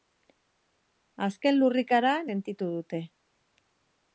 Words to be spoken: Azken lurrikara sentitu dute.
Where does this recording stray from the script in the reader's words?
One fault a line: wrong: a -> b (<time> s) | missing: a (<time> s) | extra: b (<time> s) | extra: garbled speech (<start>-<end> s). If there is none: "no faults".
no faults